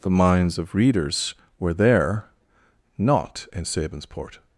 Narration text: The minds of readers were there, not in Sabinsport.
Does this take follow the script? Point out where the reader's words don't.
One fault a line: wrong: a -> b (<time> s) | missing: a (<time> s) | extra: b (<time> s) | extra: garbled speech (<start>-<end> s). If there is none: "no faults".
no faults